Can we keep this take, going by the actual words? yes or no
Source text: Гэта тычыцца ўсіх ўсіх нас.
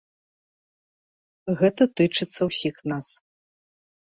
no